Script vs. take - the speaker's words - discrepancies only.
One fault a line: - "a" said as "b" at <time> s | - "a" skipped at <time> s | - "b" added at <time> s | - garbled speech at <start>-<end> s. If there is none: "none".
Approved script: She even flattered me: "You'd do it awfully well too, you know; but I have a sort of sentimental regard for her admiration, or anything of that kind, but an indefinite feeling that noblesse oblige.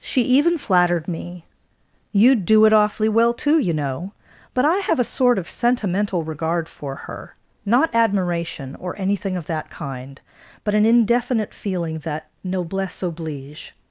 - "not" added at 7.7 s